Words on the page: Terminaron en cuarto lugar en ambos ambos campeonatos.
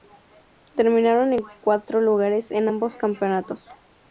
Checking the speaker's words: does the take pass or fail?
fail